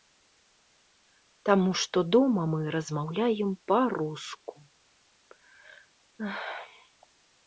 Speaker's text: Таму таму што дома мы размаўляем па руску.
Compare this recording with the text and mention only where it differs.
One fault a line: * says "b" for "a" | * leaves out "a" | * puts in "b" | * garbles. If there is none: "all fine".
* leaves out "таму"